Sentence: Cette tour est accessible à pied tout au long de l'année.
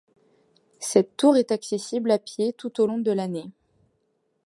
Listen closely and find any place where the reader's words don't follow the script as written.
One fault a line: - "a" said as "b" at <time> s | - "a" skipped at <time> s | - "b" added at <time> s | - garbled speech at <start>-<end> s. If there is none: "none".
none